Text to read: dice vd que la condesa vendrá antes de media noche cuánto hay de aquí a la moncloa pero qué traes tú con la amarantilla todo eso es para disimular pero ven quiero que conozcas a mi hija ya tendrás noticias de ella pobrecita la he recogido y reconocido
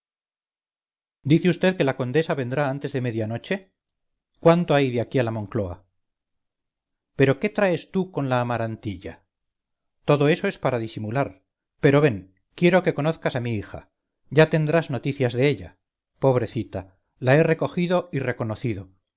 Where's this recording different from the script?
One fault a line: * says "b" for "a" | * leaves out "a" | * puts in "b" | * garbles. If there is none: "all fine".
all fine